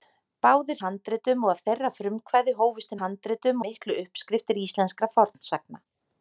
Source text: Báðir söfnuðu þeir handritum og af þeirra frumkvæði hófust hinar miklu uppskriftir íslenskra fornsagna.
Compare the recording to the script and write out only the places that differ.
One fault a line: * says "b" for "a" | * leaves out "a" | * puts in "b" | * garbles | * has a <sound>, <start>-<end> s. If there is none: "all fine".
* leaves out "söfnuðu þeir"
* says "handritum" for "hinar"